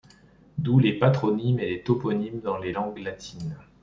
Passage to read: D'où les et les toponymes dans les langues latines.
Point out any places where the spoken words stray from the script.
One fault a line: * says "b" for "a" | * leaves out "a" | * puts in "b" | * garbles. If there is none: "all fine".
* puts in "patronymes"